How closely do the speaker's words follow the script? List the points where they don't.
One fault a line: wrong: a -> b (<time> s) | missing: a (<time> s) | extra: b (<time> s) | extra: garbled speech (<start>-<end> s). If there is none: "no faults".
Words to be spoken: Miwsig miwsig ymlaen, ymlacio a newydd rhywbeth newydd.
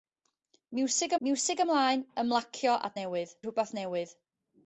no faults